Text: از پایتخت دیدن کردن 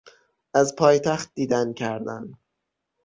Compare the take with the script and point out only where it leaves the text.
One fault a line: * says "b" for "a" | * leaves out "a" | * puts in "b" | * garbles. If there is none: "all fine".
all fine